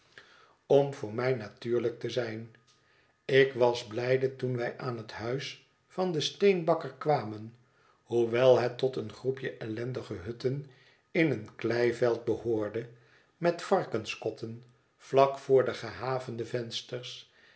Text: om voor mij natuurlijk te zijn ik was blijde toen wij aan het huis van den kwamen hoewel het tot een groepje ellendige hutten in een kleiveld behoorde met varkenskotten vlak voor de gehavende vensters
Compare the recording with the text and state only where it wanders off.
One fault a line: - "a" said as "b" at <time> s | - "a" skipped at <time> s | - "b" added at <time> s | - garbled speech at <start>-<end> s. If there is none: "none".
- "steenbakker" added at 6.2 s